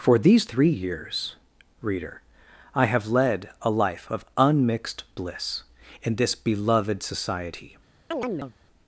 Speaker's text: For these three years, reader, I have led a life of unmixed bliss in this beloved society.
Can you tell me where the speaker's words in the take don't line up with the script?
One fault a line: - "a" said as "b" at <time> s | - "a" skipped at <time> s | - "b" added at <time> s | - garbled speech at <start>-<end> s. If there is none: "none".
none